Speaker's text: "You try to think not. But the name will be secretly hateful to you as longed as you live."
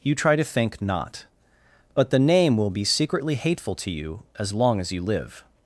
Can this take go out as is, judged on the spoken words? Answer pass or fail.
fail